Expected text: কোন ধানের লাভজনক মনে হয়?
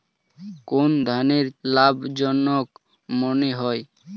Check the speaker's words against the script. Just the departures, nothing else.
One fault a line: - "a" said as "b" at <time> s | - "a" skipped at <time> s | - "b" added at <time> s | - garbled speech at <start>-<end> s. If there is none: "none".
none